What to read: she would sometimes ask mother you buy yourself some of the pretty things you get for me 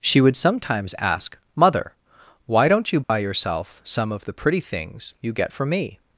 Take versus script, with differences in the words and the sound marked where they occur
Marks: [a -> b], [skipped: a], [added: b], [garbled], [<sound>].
she would sometimes ask mother [added: why don't] you buy [dropout] yourself some of the pretty things you get for me